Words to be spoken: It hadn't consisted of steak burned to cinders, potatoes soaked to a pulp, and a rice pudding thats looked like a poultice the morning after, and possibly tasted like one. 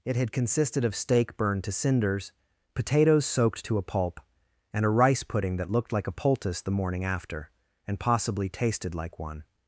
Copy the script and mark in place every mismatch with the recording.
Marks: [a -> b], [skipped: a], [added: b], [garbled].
It [hadn't -> had] consisted of steak burned to cinders, potatoes soaked to a pulp, and a rice pudding [thats -> that] looked like a poultice the morning after, and possibly tasted like one.